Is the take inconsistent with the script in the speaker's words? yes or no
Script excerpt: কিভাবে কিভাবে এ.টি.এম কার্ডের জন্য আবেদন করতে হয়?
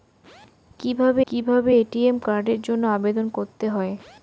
no